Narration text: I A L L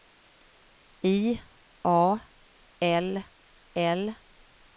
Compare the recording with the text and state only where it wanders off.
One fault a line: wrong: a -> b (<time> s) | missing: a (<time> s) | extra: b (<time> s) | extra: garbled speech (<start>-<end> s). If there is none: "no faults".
no faults